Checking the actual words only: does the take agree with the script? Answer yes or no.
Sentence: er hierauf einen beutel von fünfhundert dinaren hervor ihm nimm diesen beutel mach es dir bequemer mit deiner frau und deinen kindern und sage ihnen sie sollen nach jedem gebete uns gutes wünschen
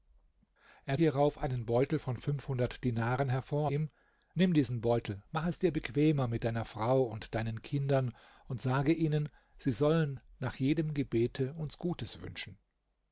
yes